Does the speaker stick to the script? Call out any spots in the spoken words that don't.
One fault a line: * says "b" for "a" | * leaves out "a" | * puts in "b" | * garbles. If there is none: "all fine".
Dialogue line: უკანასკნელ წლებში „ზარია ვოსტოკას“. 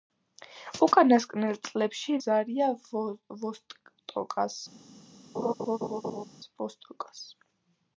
all fine